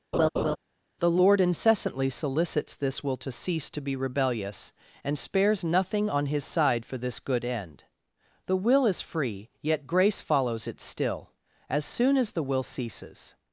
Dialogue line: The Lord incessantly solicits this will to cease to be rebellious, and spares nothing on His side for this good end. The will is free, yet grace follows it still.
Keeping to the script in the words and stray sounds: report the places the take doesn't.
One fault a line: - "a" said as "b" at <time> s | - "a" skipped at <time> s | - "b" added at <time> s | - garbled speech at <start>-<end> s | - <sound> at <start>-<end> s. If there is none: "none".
- laugh at 0.1-0.6 s
- "As soon as the will ceases" added at 11.7 s